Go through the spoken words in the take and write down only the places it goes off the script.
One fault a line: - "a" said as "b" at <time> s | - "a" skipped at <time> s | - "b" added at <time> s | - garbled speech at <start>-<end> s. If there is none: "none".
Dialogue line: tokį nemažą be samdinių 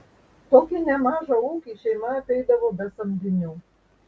- "ūkį šeima apeidavo" added at 1.5 s